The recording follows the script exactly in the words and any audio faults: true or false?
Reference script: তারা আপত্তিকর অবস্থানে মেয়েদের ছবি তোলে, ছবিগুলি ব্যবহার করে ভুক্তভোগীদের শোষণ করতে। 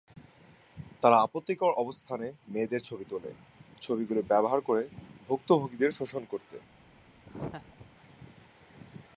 false